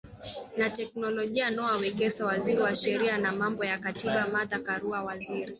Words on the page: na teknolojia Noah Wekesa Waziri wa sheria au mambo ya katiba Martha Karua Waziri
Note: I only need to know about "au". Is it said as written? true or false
false